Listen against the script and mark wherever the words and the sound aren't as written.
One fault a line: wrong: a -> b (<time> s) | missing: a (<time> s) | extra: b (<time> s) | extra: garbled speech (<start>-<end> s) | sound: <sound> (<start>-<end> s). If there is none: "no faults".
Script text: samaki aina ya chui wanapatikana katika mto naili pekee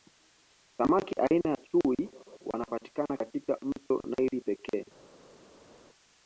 no faults